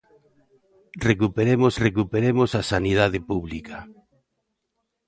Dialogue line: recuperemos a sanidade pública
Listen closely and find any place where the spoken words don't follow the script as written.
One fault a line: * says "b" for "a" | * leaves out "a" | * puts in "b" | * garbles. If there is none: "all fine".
* puts in "recuperemos"